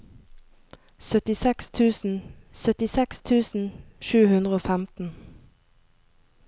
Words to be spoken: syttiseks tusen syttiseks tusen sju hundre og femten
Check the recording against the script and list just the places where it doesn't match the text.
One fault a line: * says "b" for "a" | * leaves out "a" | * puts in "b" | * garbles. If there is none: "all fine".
all fine